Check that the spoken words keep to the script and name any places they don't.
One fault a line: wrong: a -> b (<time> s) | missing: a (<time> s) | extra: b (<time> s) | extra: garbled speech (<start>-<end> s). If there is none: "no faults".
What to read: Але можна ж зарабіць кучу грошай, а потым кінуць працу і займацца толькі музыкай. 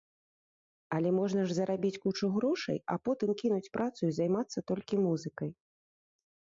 no faults